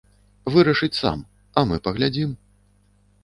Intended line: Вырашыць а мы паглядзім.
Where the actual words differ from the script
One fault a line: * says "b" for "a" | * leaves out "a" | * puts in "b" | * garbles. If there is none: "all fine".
* puts in "сам"